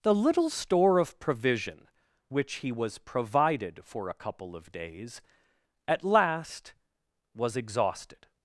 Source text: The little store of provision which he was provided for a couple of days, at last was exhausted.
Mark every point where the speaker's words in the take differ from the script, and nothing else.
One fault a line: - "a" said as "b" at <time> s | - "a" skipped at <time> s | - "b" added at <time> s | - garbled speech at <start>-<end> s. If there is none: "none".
none